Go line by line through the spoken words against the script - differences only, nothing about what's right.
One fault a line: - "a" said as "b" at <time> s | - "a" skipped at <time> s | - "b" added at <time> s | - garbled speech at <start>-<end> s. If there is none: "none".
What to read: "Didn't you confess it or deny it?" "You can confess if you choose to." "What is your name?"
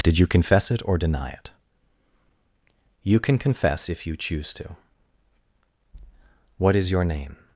- "Didn't" said as "Did" at 0.0 s